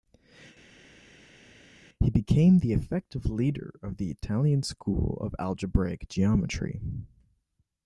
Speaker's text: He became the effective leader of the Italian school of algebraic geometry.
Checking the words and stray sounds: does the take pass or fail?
pass